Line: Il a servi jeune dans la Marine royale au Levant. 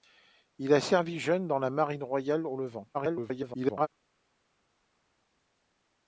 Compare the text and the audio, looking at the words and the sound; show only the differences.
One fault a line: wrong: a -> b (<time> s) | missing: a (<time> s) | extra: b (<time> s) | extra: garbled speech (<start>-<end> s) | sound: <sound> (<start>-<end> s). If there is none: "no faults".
extra: garbled speech (2.9-3.9 s)